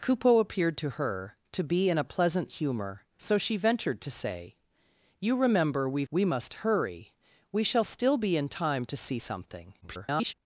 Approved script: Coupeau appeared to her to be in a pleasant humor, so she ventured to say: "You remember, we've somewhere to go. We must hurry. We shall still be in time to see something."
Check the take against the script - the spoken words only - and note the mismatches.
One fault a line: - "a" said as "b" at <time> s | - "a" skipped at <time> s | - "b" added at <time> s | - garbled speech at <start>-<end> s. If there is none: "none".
- "somewhere to go" skipped at 6.1 s
- garbled speech at 9.8-10.3 s